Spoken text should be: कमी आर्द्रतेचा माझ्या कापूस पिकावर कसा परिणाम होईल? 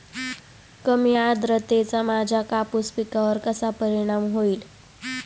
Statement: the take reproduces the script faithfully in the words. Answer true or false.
true